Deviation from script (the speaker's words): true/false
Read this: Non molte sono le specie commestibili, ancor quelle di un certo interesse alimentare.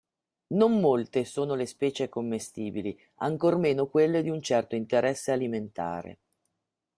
true